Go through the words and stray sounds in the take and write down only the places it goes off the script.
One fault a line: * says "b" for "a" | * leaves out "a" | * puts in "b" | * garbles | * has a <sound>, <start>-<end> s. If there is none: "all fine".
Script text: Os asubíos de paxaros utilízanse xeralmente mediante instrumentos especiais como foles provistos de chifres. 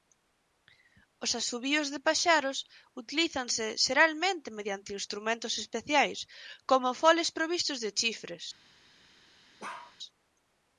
* has a bark, 9.6-10.0 s